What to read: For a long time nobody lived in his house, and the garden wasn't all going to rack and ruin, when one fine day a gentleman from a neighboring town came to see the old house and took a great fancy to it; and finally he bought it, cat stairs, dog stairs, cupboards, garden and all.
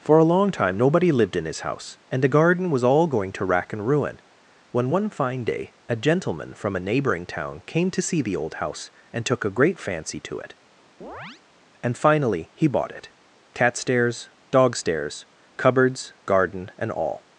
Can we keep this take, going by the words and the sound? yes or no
no